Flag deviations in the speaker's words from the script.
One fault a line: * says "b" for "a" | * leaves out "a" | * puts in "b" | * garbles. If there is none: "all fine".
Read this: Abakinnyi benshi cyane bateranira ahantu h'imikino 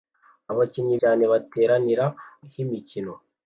* leaves out "benshi"
* leaves out "ahantu"